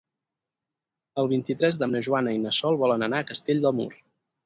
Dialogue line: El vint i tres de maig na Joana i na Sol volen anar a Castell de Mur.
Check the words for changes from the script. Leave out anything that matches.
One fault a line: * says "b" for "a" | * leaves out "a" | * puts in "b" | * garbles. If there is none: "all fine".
* leaves out "maig"